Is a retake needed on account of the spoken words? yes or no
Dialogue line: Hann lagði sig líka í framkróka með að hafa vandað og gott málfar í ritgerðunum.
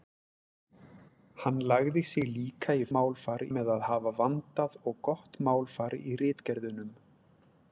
yes